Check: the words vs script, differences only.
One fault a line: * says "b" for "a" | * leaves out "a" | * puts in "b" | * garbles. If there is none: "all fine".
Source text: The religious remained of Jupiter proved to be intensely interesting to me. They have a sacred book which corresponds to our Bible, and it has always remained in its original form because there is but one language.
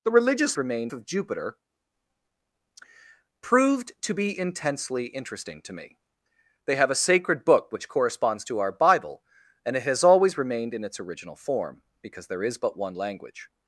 all fine